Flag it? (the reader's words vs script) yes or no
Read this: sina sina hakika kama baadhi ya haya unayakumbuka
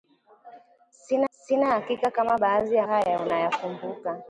no